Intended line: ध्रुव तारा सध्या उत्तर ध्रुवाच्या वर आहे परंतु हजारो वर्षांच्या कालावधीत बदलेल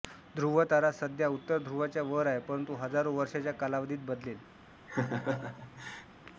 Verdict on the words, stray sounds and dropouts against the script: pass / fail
fail